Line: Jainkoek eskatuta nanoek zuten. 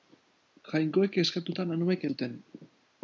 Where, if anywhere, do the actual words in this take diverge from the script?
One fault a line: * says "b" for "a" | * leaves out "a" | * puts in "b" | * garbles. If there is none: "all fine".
all fine